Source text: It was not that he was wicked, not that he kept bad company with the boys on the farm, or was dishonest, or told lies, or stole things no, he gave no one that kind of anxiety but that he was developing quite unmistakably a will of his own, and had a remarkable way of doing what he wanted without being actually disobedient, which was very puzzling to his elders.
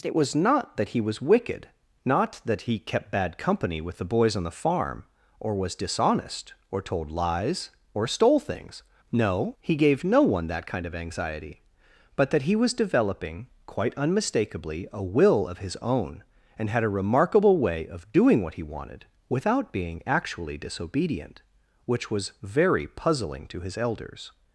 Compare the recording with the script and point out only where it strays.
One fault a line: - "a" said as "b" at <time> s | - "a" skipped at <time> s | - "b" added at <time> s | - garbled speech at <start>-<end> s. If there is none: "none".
none